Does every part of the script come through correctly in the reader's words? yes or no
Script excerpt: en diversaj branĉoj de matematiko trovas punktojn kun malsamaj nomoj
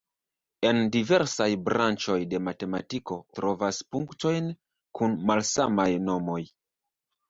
yes